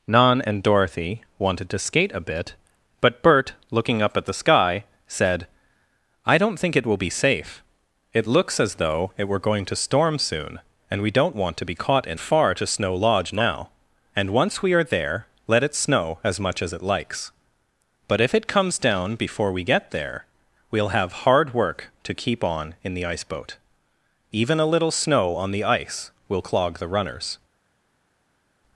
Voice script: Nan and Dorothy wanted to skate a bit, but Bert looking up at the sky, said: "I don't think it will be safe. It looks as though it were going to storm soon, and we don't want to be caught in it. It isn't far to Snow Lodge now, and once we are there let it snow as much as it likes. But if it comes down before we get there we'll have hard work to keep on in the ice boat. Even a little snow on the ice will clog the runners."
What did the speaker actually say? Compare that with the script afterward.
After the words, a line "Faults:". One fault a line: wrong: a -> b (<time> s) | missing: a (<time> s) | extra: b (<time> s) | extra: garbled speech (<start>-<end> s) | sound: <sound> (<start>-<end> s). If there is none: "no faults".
Nan and Dorothy wanted to skate a bit, but Bert looking up at the sky, said: "I don't think it will be safe. It looks as though it were going to storm soon, and we don't want to be caught in far to Snow Lodge now, and once we are there let it snow as much as it likes. But if it comes down before we get there we'll have hard work to keep on in the ice boat. Even a little snow on the ice will clog the runners."
Faults:
missing: it It isn't (12.2 s)